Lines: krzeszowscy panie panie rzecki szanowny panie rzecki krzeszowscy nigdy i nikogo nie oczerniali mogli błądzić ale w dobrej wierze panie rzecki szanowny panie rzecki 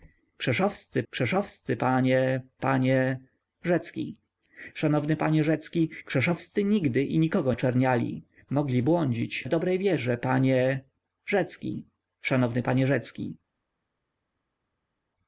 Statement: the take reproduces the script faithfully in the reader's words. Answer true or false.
false